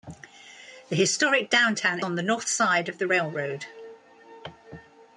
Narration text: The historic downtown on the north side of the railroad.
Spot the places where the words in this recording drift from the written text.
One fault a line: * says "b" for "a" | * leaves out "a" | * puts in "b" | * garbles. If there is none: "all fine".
all fine